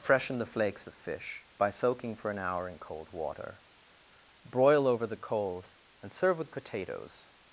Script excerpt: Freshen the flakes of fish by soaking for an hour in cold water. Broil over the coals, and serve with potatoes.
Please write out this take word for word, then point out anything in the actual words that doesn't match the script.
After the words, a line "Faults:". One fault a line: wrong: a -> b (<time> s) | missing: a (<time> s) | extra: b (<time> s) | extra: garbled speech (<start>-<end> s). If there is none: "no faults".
Freshen the flakes of fish by soaking for an hour in cold water. Broil over the coals, and serve with potatoes.
Faults:
no faults